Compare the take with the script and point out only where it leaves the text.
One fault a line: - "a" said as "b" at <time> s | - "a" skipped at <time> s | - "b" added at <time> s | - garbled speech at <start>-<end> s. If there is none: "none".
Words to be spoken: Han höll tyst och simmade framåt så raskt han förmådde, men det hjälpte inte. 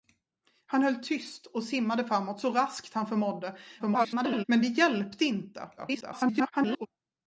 - garbled speech at 3.8-4.4 s
- garbled speech at 5.8-6.9 s